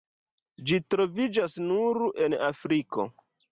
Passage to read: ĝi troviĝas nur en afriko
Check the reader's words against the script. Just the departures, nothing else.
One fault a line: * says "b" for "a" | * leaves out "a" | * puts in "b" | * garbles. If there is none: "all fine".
all fine